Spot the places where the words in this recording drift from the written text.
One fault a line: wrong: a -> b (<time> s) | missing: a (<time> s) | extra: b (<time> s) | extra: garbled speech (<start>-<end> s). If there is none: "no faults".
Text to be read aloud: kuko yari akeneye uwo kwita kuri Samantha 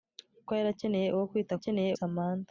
wrong: kuri -> akeneye (1.6 s)